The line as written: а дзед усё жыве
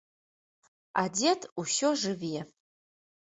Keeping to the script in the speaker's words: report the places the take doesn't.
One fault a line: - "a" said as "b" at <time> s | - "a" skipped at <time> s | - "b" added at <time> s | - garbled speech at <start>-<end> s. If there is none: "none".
none